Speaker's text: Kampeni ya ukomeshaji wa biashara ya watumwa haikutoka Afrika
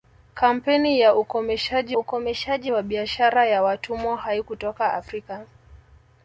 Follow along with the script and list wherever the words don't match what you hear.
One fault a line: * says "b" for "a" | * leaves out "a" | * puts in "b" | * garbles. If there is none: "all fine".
* puts in "ukomeshaji"